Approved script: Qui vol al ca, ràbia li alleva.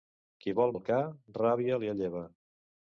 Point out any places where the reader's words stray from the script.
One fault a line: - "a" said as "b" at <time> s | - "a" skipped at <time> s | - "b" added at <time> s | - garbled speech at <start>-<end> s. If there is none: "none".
none